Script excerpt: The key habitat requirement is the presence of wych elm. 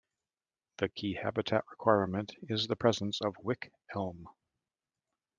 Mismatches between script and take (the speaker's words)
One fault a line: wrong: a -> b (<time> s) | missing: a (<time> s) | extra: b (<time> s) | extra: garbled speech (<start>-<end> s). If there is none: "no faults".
no faults